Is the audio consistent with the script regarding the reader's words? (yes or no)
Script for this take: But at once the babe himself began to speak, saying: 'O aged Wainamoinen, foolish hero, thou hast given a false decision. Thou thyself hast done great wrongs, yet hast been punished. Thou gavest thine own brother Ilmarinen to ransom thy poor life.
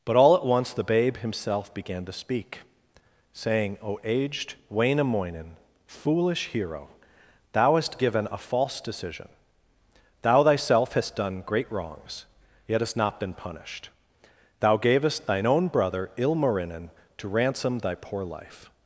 no